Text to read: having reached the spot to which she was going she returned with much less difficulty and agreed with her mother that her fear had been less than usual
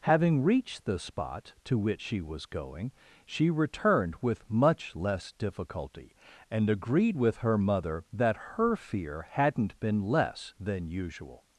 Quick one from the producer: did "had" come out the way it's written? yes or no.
no